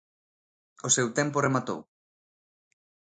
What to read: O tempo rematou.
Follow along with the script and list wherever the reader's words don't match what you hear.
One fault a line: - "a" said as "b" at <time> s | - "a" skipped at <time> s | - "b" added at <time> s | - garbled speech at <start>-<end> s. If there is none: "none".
- "seu" added at 0.9 s